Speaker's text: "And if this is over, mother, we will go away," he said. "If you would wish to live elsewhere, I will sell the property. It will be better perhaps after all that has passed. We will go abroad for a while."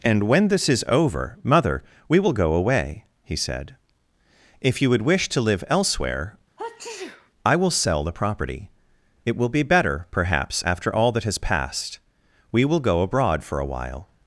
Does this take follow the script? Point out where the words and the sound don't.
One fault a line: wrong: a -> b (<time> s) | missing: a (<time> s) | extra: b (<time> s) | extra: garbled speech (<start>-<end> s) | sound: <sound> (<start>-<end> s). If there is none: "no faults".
wrong: if -> when (0.2 s)
sound: sneeze (6.6-7.3 s)